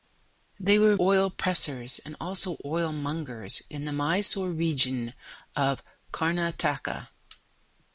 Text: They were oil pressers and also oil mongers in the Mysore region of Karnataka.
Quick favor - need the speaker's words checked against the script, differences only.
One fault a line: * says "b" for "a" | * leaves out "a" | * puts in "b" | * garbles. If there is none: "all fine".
all fine